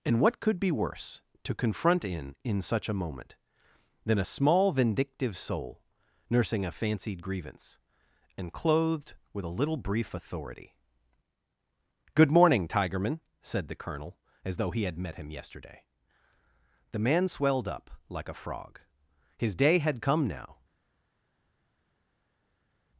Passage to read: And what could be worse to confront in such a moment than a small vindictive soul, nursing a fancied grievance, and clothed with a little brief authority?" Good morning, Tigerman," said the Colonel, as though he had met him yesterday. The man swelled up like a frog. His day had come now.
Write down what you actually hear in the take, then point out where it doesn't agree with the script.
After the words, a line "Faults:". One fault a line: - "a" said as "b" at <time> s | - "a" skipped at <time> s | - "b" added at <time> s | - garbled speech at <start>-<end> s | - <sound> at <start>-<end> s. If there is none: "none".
And what could be worse to confront in in such a moment than a small vindictive soul, nursing a fancied grievance, and clothed with a little brief authority?" Good morning, Tigerman," said the Colonel, as though he had met him yesterday. The man swelled up like a frog. His day had come now.
Faults:
- "in" added at 2.4 s